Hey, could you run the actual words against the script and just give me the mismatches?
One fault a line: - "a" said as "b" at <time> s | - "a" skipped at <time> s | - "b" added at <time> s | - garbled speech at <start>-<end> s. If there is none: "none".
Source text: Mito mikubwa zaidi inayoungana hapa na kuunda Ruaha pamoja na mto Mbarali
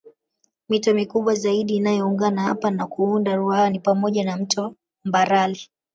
- "ni" added at 3.7 s